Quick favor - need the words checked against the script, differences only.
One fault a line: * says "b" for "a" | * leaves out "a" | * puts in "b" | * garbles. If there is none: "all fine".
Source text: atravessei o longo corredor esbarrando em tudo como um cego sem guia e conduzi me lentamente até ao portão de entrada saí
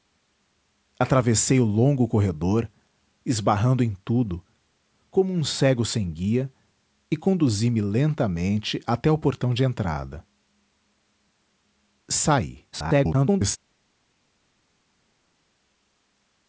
* garbles